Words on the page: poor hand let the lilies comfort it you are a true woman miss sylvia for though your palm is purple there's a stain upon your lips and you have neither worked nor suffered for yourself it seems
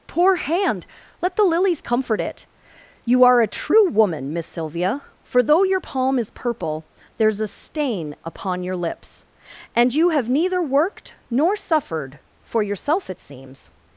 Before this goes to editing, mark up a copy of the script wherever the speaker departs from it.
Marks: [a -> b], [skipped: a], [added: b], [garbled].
poor hand let the lilies comfort it you are a true woman miss sylvia for though your palm is purple there's a stain upon your lips and you have neither worked nor suffered for yourself it seems